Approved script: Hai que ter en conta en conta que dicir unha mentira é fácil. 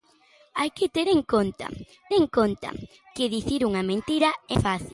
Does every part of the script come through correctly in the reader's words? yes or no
yes